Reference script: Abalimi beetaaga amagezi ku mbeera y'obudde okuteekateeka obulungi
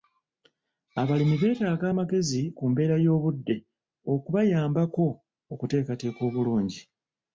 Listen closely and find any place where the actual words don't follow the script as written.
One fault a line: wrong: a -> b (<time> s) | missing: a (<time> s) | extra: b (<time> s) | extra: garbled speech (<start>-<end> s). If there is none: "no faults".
extra: okubayambako (4.1 s)